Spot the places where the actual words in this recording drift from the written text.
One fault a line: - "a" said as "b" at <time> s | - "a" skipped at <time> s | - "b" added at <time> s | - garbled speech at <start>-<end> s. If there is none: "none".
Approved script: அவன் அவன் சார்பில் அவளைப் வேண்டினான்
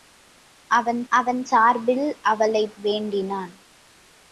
none